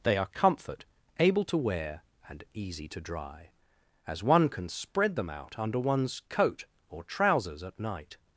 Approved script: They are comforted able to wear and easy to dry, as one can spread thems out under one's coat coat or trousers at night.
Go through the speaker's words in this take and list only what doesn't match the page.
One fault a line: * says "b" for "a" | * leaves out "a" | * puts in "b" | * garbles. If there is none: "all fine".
* says "comfort" for "comforted"
* says "them" for "thems"
* leaves out "coat"